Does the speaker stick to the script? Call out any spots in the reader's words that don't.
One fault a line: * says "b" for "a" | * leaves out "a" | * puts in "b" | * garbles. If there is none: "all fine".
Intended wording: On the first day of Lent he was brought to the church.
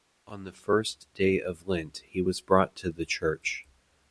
all fine